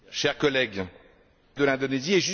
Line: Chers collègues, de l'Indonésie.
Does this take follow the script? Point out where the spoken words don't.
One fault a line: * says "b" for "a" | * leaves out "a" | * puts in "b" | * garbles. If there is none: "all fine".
all fine